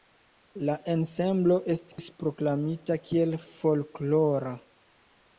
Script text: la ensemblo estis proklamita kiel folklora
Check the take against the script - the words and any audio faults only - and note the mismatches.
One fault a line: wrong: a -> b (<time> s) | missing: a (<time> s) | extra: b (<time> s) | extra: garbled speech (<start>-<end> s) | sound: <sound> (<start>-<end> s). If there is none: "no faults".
sound: dropout (1.9-2.0 s)